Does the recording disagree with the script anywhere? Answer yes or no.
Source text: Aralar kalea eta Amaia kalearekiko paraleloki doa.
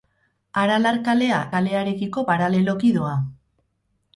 yes